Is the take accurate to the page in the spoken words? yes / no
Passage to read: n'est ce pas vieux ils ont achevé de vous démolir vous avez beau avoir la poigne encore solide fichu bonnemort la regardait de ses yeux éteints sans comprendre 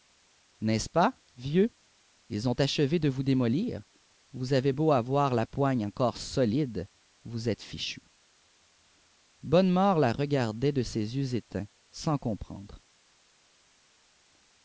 no